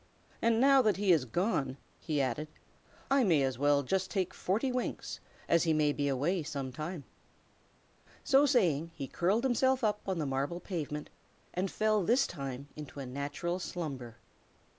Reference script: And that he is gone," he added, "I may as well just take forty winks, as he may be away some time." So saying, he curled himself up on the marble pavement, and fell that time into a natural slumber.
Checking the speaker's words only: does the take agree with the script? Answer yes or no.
no